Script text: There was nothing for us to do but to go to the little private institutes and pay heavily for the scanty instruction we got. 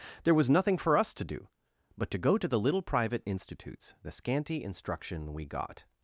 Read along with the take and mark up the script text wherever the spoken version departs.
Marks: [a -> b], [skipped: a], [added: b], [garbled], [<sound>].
There was nothing for us to do but to go to the little private institutes [skipped: and pay heavily for] the scanty instruction we got.